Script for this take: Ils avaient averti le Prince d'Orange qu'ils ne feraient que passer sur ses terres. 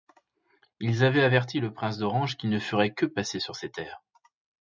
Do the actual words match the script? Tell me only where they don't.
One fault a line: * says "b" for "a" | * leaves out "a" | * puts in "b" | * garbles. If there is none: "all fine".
all fine